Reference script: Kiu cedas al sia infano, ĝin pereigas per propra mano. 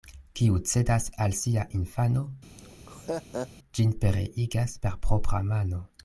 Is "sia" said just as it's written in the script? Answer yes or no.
yes